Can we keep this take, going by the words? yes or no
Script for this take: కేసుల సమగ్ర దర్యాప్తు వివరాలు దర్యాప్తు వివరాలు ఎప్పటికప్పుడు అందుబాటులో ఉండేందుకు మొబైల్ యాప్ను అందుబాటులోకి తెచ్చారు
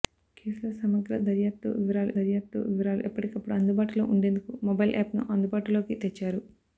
yes